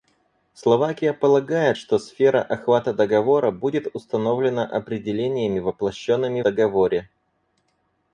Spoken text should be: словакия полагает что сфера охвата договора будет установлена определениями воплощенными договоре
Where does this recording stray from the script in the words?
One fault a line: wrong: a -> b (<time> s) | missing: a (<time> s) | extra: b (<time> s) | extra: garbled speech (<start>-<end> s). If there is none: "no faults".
no faults